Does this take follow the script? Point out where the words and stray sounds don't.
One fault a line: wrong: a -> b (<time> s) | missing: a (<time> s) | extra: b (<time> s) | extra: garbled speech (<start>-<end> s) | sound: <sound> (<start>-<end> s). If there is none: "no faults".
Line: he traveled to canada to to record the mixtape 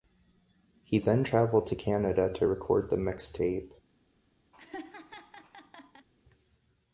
extra: then (1.0 s)
missing: to (2.5 s)
sound: laugh (4.5-6.1 s)